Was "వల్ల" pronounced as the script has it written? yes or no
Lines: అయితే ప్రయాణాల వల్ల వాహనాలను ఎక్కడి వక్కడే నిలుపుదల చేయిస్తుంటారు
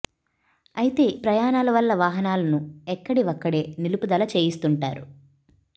yes